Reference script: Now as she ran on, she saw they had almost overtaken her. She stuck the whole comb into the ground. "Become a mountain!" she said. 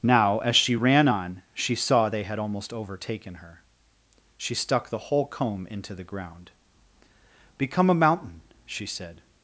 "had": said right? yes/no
yes